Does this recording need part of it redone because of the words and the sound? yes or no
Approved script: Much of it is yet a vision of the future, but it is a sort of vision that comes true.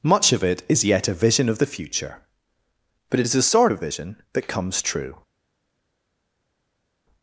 no